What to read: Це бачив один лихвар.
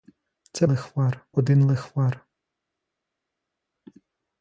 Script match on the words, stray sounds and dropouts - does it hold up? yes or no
no